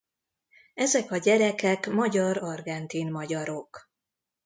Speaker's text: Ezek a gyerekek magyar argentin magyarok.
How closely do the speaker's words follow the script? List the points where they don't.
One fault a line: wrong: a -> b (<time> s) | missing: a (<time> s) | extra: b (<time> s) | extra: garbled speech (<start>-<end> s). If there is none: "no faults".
no faults